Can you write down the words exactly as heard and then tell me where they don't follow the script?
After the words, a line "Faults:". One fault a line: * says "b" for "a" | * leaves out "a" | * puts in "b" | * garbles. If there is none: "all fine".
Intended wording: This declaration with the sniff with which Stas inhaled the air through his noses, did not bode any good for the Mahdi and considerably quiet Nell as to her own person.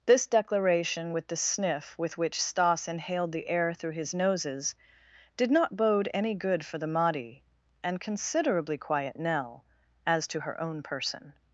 This declaration with the sniff with which Stas inhaled the air through his noses, did not bode any good for the Mahdi and considerably quiet Nell as to her own person.
Faults:
all fine